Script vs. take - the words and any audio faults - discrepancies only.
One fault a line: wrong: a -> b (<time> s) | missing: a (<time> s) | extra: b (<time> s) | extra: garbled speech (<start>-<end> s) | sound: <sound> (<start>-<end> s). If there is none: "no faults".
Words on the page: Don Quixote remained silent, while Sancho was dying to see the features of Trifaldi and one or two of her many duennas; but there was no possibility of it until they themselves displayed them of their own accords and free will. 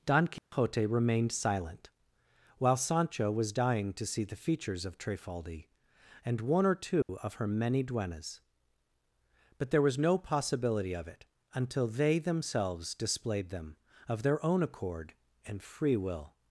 sound: dropout (0.4-0.5 s)
sound: dropout (7.0-7.1 s)
wrong: accords -> accord (14.6 s)